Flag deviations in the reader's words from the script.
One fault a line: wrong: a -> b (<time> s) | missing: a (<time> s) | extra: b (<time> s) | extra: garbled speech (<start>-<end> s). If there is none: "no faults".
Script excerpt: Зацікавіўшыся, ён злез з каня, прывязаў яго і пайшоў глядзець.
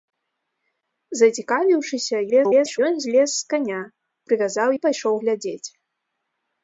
extra: garbled speech (2.3-2.8 s)
missing: яго (4.7 s)